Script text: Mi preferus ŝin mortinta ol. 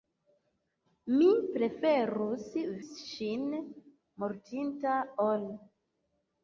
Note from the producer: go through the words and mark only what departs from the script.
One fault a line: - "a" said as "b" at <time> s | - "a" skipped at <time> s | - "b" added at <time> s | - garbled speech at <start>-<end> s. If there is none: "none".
none